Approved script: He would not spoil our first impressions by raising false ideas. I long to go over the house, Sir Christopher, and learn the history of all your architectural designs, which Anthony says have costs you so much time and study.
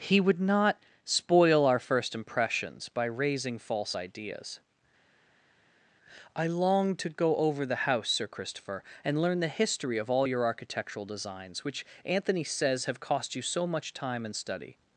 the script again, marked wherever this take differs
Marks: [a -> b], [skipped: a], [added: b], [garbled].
He would not spoil our first impressions by raising false ideas. I long to go over the house, Sir Christopher, and learn the history of all your architectural designs, which Anthony says have [costs -> cost] you so much time and study.